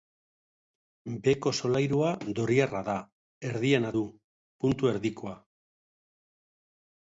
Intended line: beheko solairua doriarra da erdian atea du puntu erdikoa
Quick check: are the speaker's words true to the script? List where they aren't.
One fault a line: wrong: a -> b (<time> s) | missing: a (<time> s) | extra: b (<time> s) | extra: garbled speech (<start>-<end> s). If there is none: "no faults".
missing: atea (3.9 s)